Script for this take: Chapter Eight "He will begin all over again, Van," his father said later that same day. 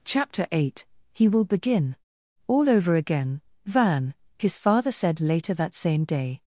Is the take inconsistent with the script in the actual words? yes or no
no